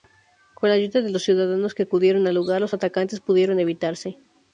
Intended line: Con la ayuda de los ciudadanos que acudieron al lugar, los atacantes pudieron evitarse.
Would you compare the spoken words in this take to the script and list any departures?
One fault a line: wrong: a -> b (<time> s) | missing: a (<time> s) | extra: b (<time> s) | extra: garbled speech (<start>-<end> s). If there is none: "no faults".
no faults